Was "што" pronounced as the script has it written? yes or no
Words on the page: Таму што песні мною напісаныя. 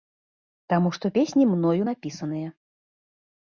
yes